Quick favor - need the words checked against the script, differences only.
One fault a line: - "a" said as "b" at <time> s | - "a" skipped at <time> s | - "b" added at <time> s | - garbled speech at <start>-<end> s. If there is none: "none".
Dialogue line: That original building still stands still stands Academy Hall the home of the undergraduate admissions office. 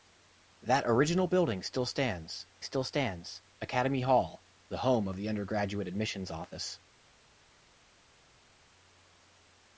none